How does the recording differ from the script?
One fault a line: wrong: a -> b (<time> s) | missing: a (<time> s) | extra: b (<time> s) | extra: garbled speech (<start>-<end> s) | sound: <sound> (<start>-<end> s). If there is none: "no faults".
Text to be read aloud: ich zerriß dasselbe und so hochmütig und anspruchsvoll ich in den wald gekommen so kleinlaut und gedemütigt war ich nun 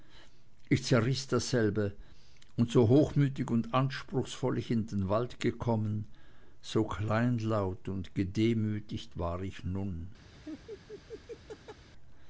sound: laugh (10.3-11.9 s)